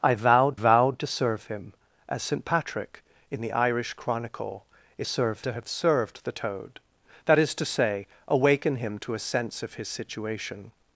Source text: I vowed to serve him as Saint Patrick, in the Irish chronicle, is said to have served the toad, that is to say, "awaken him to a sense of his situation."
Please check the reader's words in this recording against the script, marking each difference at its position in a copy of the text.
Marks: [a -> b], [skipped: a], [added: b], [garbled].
I vowed [added: vowed] to serve him as Saint Patrick, in the Irish chronicle, is [said -> serve] to have served the toad, that is to say, "awaken him to a sense of his situation."